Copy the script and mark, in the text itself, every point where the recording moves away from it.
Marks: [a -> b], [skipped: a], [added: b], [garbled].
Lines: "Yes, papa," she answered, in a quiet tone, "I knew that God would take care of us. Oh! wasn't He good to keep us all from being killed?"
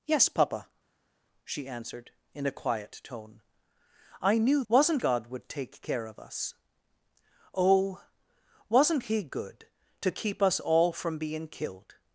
"Yes, papa," she answered, in a quiet tone, "I knew [that -> wasn't] God would take care of us. Oh! wasn't He good to keep us all from being killed?"